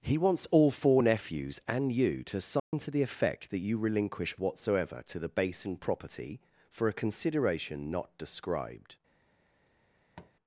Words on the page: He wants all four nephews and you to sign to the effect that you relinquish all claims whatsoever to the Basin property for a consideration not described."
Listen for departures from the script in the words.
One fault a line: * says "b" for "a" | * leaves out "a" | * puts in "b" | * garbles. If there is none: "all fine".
* leaves out "all claims"